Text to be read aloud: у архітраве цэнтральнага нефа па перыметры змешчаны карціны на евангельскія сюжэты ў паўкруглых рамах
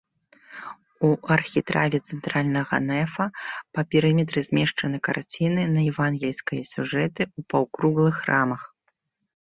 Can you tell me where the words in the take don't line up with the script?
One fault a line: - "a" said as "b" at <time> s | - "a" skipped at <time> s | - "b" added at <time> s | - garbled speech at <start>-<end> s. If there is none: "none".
none